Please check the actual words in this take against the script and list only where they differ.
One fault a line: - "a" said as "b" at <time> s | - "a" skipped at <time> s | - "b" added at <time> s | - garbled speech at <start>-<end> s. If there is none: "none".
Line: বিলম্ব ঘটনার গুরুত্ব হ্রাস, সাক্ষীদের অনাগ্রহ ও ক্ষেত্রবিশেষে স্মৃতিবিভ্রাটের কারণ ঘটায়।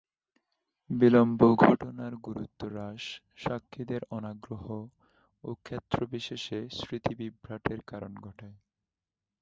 none